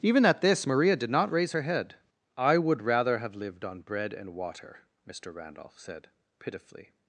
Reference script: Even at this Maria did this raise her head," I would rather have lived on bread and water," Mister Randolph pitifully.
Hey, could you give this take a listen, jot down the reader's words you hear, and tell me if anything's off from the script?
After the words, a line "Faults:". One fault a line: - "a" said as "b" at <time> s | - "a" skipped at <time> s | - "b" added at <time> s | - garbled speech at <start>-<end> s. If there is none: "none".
Even at this Maria did not raise her head," I would rather have lived on bread and water," Mister Randolph said, pitifully.
Faults:
- "this" said as "not" at 1.1 s
- "said" added at 5.8 s